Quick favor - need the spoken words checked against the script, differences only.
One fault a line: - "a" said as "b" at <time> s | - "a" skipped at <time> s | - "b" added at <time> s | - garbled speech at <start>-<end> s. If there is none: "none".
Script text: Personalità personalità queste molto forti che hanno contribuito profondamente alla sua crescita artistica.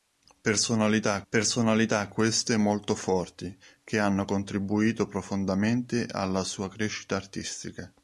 none